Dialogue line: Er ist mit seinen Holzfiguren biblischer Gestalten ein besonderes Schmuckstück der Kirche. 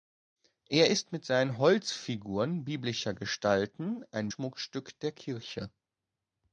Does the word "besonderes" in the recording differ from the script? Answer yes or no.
yes